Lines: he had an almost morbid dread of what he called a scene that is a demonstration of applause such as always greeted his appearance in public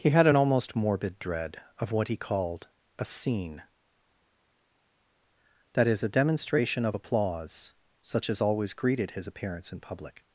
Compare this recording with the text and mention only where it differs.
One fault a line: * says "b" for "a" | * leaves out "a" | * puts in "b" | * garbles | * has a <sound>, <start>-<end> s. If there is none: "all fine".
all fine